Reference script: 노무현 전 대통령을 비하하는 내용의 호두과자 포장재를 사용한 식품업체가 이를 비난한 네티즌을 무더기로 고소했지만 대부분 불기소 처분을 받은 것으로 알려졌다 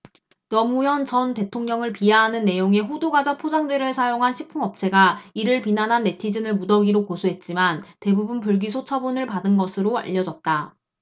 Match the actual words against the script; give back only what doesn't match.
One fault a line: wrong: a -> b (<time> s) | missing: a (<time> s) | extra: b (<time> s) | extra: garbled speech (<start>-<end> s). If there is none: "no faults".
no faults